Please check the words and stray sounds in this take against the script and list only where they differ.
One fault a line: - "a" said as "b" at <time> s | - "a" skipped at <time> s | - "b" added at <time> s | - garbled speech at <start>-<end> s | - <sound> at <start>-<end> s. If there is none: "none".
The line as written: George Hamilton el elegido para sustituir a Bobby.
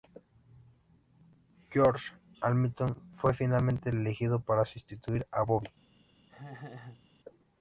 - "fue finalmente" added at 3.1 s
- laugh at 6.3-7.0 s